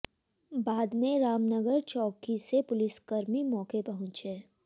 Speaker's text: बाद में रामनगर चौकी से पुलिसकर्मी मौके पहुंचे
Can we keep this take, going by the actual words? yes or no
yes